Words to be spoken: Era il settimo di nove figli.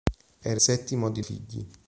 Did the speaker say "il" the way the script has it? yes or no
no